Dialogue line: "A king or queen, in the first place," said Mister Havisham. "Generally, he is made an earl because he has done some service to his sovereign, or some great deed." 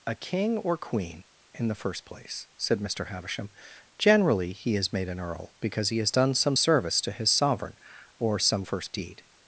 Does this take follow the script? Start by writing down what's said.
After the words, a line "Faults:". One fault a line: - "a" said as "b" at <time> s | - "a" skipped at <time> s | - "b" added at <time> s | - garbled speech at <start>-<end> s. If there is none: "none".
"A king or queen, in the first place," said Mister Havisham. "Generally, he is made an earl because he has done some service to his sovereign, or some first deed."
Faults:
- "great" said as "first" at 8.6 s